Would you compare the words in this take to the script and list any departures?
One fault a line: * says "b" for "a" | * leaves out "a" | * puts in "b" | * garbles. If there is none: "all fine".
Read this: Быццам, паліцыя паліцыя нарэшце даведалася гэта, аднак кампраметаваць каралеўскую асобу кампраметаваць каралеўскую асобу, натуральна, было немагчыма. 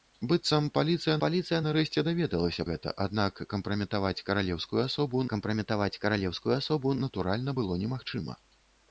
all fine